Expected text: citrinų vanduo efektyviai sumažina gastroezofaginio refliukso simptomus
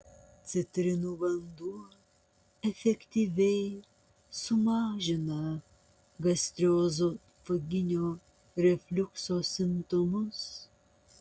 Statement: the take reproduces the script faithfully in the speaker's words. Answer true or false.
true